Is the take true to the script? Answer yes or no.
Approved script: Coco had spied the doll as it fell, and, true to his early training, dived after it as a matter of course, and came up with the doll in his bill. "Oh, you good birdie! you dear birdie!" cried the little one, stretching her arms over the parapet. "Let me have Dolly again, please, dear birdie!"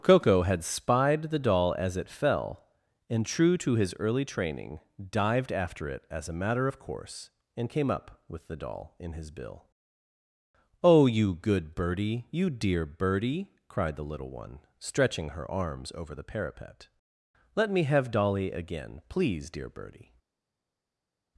yes